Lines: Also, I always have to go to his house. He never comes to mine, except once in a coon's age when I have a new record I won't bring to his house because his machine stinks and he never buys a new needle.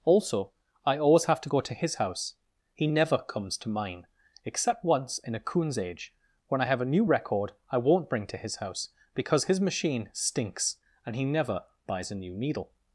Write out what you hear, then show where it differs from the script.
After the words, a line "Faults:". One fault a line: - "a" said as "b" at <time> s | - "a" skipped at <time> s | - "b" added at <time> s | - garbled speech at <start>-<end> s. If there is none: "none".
Also, I always have to go to his house. He never comes to mine, except once in a coon's age when I have a new record I won't bring to his house because his machine stinks and he never buys a new needle.
Faults:
none